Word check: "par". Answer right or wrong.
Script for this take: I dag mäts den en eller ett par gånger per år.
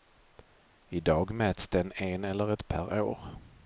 wrong